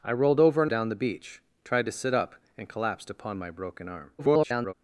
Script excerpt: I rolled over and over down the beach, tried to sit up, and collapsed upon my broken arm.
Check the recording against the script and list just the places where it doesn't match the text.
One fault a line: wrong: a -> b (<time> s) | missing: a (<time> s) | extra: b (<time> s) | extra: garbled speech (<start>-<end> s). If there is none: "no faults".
missing: over (0.7 s)
extra: garbled speech (4.2-4.7 s)